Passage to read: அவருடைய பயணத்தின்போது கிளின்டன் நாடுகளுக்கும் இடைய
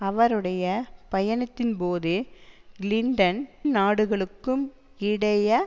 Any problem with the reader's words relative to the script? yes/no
no